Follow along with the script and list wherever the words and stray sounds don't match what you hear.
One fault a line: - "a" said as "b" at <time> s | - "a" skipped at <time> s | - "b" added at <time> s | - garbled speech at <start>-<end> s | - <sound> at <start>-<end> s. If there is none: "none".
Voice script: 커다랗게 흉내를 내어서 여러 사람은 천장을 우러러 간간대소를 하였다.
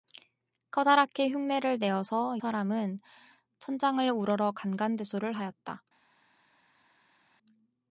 - "여러" skipped at 2.4 s